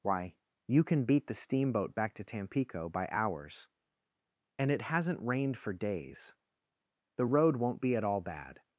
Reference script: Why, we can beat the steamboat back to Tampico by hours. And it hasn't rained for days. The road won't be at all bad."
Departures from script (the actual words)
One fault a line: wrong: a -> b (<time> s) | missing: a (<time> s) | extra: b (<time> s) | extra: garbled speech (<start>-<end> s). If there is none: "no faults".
wrong: we -> you (0.7 s)